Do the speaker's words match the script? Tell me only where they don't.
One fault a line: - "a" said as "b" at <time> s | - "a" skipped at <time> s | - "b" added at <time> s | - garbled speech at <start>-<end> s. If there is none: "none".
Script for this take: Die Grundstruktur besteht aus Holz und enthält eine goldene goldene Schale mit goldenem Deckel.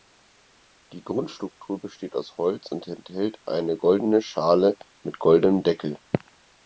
- "goldene" skipped at 4.2 s